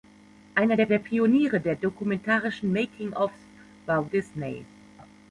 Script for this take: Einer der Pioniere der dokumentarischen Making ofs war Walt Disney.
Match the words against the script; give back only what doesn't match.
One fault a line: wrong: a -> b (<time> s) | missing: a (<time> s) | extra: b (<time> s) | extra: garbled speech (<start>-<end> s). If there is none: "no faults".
extra: der (0.9 s)
missing: Walt (4.1 s)